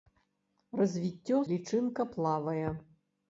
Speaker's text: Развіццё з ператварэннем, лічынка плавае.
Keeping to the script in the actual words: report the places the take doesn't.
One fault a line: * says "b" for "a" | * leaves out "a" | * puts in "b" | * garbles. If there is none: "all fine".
* leaves out "з ператварэннем"